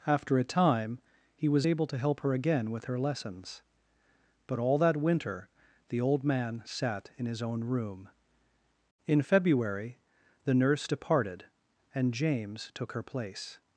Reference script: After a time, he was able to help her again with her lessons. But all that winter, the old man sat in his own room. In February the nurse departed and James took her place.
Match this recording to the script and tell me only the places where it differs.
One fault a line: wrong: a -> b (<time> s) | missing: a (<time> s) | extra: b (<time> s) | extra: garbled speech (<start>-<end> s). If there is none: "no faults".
no faults